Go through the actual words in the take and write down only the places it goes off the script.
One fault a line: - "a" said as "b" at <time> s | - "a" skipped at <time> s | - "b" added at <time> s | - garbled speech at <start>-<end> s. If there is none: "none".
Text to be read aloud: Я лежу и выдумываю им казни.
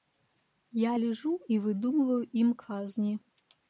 none